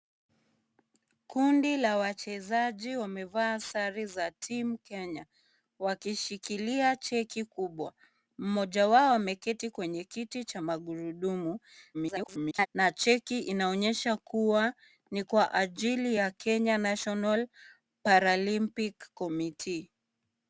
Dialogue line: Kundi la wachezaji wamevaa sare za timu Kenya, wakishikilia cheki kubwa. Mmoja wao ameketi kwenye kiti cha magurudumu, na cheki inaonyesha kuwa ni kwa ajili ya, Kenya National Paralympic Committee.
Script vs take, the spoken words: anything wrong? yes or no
yes